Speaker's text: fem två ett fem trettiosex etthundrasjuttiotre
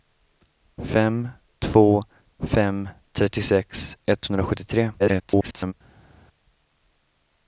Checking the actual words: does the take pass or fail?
fail